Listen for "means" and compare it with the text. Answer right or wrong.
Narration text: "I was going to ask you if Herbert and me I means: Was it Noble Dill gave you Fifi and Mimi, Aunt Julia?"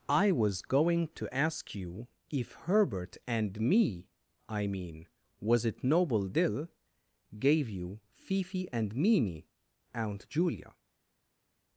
wrong